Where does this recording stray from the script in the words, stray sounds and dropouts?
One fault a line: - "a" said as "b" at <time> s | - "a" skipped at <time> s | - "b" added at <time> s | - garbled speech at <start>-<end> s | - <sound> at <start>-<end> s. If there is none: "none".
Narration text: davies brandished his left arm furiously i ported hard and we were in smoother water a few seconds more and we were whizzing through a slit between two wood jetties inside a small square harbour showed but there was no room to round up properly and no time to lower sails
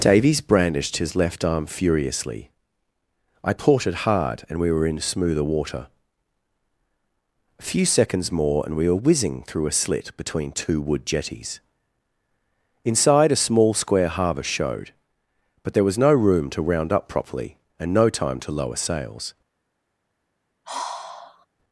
- sigh at 20.6-21.5 s